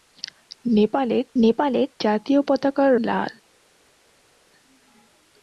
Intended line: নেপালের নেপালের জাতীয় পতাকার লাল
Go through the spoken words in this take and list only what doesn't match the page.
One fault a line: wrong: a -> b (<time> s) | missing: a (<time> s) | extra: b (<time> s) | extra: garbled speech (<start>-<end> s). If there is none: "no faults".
no faults